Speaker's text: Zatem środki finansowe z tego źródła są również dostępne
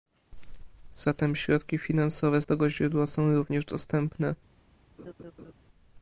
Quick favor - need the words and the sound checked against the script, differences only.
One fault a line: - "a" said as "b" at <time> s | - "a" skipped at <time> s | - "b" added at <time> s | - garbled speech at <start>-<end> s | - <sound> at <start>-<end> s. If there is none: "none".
- laugh at 5.0-5.5 s